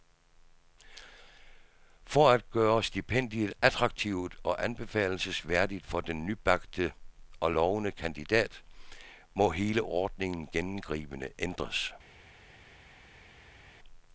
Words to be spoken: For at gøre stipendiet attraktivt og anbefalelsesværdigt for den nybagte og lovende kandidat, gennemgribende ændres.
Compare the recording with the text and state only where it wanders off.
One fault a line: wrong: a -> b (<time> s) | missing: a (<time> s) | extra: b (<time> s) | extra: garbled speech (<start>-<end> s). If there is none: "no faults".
extra: må hele ordningen (9.3 s)